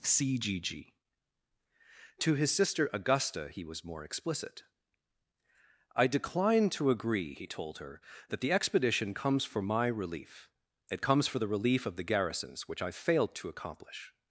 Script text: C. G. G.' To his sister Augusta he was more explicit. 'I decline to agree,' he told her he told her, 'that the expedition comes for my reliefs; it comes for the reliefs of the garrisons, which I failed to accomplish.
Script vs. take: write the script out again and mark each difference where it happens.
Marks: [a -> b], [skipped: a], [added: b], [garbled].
C. G. G.' To his sister Augusta he was more explicit. 'I decline to agree,' he told her [skipped: he told her,] 'that the expedition comes for my [reliefs; -> relief] it comes for the [reliefs -> relief] of the garrisons, which I failed to accomplish.